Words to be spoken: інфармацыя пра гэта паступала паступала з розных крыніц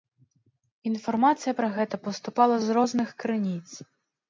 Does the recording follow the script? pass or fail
fail